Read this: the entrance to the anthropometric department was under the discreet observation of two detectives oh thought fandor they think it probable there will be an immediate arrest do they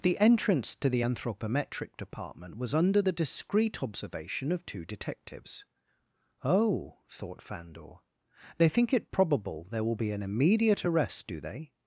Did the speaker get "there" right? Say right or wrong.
right